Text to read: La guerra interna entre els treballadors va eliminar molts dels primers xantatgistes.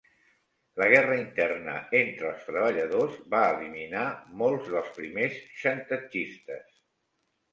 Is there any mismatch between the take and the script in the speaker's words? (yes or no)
no